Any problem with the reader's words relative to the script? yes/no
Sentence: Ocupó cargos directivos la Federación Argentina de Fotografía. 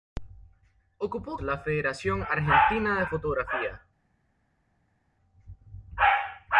yes